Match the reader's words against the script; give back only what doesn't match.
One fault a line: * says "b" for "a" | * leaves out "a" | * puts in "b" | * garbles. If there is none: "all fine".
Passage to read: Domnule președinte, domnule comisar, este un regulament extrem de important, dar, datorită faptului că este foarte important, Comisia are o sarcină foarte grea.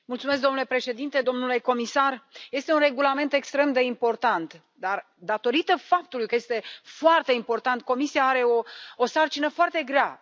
all fine